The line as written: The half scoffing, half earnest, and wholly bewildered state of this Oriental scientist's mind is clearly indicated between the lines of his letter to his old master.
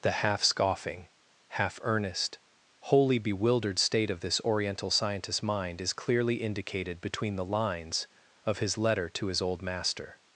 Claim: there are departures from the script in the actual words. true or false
true